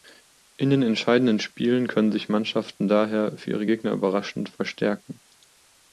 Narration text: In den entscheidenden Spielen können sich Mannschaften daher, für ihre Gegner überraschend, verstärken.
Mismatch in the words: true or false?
false